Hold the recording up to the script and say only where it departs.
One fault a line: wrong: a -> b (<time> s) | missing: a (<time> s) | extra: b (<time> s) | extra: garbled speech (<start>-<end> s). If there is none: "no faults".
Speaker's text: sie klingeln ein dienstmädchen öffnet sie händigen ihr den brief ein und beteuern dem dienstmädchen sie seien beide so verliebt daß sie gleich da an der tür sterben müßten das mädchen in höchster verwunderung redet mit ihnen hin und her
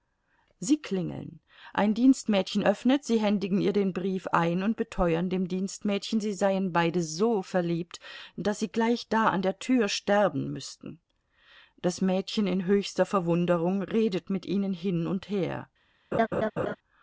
no faults